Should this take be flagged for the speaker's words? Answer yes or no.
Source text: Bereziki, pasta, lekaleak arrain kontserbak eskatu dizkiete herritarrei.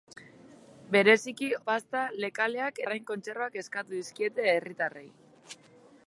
no